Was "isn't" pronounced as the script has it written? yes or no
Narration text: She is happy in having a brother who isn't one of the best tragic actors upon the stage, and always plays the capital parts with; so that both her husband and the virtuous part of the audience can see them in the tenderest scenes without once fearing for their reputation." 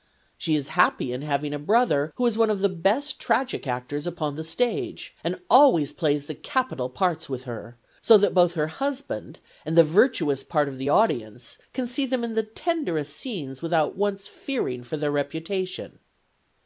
no